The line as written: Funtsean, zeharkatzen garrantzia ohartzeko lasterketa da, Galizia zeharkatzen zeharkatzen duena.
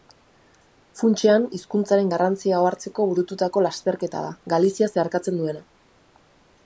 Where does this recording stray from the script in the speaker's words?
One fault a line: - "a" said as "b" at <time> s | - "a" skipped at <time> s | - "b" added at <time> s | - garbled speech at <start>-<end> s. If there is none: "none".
- "zeharkatzen" said as "hizkuntzaren" at 1.6 s
- "burututako" added at 3.1 s
- "zeharkatzen" skipped at 5.4 s